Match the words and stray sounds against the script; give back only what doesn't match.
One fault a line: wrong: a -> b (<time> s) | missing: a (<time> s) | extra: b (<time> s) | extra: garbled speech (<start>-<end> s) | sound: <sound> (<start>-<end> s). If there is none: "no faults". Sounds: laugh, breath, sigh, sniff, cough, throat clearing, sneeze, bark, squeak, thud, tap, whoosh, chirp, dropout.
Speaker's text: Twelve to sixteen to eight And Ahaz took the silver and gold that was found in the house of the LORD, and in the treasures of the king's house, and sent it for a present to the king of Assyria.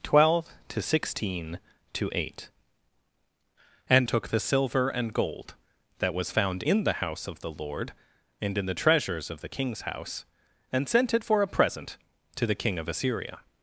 missing: Ahaz (4.1 s)